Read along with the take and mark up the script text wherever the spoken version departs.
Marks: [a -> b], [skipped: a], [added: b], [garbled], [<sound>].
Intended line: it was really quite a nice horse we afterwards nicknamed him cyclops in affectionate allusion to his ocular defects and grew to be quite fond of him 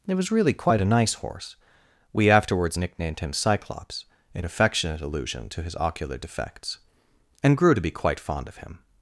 it was really quite a nice horse we afterwards nicknamed him cyclops in affectionate allusion to his ocular defects and grew to be quite fond of him